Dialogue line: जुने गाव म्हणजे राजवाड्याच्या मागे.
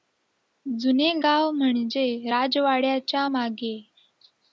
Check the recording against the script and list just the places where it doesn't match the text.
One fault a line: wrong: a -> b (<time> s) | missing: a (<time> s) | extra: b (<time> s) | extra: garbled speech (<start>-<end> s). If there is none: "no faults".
no faults